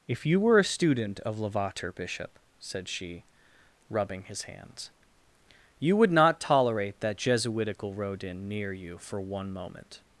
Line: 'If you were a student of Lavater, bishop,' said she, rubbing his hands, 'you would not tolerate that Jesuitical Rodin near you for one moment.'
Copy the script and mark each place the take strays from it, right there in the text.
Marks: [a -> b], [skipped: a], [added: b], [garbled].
'If you were a student of Lavater, bishop,' said she, rubbing his hands, 'you would not tolerate that Jesuitical Rodin near you for one moment.'